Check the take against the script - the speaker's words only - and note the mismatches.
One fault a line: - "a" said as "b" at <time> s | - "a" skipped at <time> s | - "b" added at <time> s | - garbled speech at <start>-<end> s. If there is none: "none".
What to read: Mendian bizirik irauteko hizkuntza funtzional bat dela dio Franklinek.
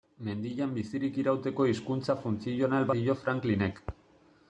- "bat dela" skipped at 2.9 s